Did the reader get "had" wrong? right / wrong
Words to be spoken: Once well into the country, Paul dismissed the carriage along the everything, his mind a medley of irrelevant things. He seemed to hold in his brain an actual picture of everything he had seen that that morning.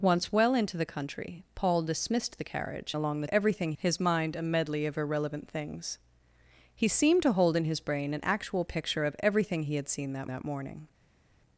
right